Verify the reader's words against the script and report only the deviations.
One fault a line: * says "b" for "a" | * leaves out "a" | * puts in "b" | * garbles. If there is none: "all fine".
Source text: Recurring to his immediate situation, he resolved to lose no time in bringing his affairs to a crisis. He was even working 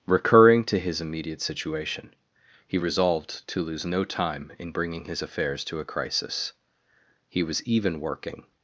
all fine